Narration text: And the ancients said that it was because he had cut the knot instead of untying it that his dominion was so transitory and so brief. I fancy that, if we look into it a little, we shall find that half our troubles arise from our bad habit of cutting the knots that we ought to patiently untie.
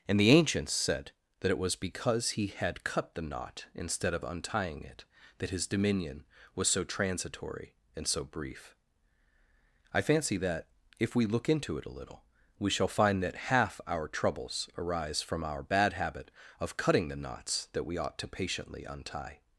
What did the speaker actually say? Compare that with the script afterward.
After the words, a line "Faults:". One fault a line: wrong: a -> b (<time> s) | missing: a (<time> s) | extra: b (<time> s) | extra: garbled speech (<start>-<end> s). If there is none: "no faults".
And the ancients said that it was because he had cut the knot instead of untying it that his dominion was so transitory and so brief. I fancy that, if we look into it a little, we shall find that half our troubles arise from our bad habit of cutting the knots that we ought to patiently untie.
Faults:
no faults